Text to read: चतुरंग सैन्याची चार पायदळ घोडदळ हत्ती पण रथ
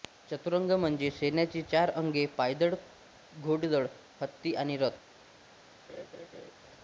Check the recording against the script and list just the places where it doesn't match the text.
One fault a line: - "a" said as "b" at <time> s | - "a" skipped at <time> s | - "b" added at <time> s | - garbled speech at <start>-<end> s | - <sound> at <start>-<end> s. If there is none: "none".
- "म्हणजे" added at 0.7 s
- "अंगे" added at 1.9 s
- "पण" said as "आणि" at 4.5 s
- laugh at 5.9-6.5 s